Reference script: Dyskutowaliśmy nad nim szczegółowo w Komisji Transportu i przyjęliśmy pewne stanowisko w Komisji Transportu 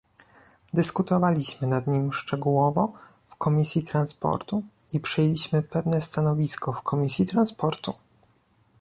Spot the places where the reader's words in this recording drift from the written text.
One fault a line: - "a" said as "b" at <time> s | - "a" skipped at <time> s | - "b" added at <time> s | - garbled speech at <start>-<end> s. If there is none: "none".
none